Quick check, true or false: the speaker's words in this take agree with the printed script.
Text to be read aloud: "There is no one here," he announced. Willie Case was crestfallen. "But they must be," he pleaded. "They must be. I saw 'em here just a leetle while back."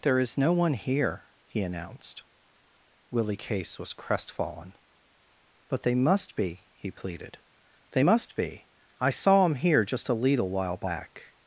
true